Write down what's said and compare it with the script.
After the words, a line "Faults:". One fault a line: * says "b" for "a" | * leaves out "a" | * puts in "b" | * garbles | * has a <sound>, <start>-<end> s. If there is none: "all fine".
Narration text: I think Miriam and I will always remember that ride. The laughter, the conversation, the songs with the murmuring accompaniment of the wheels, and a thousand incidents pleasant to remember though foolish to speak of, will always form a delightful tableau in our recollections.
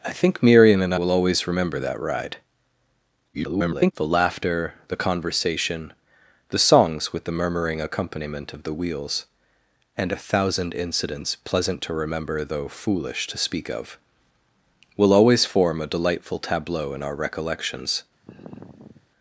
I think Miriam and will always remember that ride. [garbled] The laughter, the conversation, the songs with the murmuring accompaniment of the wheels, and a thousand incidents pleasant to remember though foolish to speak of, will always form a delightful tableau in our recollections.
Faults:
* leaves out "I"
* garbles
* has a sigh, 18.2-19.1 s